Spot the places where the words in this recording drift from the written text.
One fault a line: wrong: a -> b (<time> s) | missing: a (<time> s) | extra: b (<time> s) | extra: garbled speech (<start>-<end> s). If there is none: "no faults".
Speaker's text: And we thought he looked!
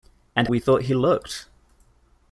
no faults